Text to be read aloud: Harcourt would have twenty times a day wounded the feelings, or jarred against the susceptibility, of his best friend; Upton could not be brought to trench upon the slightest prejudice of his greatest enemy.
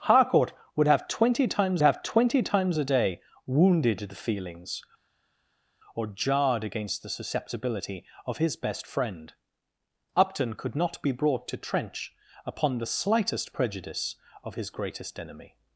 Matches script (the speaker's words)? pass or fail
fail